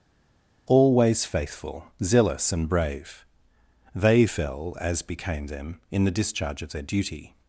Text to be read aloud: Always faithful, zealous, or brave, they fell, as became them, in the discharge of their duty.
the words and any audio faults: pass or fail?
fail